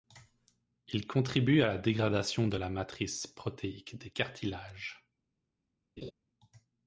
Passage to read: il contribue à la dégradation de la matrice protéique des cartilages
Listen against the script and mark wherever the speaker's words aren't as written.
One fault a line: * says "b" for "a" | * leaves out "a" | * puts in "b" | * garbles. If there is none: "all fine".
all fine